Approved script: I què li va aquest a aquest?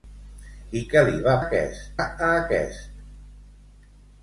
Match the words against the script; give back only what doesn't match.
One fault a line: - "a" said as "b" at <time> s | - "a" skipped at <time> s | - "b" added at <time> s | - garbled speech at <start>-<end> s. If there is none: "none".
none